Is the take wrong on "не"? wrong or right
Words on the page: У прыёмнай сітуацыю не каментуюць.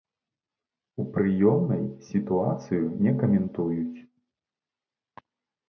right